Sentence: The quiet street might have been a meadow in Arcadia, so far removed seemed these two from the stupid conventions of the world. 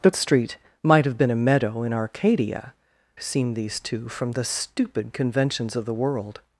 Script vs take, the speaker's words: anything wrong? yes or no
yes